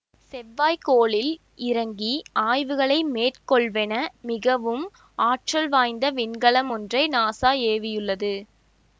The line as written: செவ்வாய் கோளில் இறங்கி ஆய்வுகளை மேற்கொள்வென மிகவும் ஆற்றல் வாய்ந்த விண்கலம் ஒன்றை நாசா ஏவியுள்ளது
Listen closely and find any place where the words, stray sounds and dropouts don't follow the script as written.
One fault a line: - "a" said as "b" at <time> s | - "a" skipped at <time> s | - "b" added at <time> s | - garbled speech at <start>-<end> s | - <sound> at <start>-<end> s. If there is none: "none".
none